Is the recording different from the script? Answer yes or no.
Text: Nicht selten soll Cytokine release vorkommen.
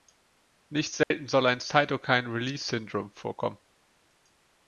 yes